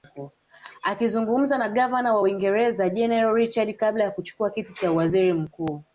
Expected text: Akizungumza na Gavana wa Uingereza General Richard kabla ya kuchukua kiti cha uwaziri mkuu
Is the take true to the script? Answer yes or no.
yes